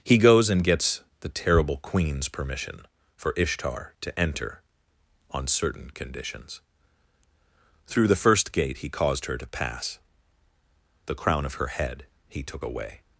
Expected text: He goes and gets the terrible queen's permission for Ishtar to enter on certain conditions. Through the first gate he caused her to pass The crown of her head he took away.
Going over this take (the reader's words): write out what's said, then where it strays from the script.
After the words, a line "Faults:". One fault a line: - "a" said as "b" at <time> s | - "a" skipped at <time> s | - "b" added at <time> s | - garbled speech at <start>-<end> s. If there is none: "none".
He goes and gets the terrible queen's permission for Ishtar to enter on certain conditions. Through the first gate he caused her to pass The crown of her head he took away.
Faults:
none